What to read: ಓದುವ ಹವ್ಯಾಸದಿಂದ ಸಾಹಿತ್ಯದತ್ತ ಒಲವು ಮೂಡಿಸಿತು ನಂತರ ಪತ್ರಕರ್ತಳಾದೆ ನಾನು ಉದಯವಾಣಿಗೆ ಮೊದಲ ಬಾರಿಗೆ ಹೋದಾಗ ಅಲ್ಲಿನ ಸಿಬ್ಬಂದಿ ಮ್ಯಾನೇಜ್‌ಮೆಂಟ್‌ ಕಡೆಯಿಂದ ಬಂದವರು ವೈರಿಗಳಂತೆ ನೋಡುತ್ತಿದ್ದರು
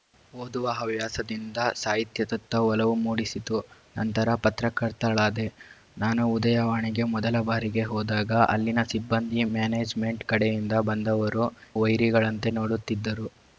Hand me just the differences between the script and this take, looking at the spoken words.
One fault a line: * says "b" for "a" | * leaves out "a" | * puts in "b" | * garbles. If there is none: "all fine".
all fine